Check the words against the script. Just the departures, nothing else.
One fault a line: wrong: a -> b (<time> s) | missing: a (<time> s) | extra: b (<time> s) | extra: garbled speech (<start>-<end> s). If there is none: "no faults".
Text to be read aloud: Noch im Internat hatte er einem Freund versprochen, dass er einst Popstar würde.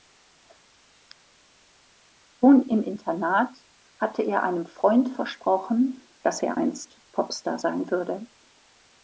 wrong: Noch -> Schon (2.4 s)
extra: sein (7.6 s)